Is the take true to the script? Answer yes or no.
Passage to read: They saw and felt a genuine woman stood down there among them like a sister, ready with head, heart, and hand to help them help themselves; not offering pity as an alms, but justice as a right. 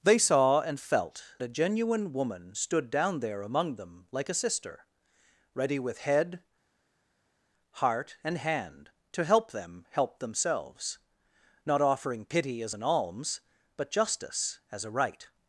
yes